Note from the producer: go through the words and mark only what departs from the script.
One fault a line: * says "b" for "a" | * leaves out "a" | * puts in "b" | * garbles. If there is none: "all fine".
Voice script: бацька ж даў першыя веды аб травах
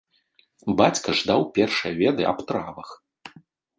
all fine